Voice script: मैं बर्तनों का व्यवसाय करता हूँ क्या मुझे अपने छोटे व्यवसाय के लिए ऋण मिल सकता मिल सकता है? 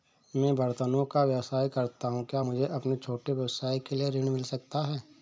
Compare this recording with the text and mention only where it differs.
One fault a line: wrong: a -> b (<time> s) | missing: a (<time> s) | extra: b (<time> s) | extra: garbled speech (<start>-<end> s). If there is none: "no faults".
missing: मिल सकता (4.9 s)